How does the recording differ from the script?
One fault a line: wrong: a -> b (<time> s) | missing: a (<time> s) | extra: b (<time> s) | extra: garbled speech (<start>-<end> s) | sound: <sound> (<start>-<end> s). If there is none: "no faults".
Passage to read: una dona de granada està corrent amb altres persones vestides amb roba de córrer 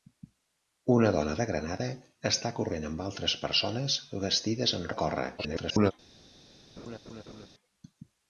missing: roba (4.9 s)
extra: garbled speech (5.4-5.9 s)
sound: laugh (6.8-7.5 s)